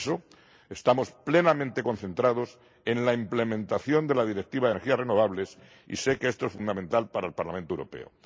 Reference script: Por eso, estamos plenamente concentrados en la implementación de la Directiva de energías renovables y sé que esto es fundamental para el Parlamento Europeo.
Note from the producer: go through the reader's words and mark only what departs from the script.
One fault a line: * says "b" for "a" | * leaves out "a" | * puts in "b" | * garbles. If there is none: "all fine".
all fine